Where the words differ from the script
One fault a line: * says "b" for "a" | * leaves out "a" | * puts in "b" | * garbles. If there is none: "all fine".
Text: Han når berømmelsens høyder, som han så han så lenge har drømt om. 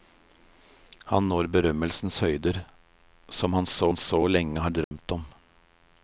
all fine